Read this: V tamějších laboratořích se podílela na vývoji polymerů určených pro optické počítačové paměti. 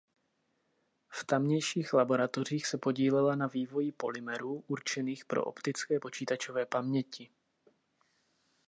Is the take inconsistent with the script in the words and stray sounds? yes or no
no